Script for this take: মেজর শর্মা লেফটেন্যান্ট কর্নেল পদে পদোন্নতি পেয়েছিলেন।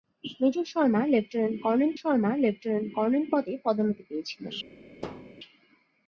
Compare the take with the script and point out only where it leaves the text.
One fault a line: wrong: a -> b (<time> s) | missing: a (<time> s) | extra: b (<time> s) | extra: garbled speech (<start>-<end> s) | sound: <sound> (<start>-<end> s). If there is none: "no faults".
extra: শর্মা লেফটেন্যান্ট কর্নেল (2.0 s)
sound: thud (5.0-5.3 s)